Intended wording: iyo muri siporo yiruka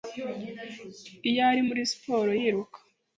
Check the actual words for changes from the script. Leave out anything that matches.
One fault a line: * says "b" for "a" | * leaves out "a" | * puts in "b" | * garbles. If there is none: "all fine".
* puts in "ari"